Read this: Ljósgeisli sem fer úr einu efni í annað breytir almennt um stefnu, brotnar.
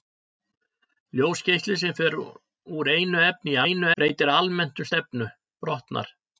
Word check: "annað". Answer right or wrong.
wrong